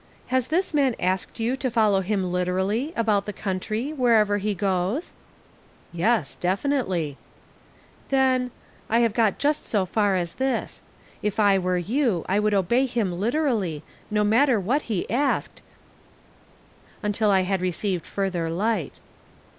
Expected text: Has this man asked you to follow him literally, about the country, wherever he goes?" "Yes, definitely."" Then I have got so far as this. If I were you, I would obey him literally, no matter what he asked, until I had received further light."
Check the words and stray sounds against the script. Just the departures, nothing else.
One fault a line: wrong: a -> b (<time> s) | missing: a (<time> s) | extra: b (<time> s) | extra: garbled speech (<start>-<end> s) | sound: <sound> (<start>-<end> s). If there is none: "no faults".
extra: just (9.4 s)